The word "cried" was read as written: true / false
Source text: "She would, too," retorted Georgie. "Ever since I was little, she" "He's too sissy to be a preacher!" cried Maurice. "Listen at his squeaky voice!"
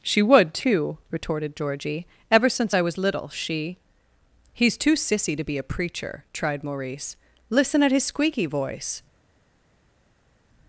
false